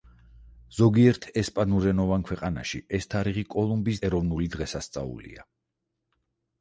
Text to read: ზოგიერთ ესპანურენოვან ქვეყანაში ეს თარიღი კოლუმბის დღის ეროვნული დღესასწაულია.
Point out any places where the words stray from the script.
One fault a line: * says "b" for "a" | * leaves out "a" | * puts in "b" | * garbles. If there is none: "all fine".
* leaves out "დღის"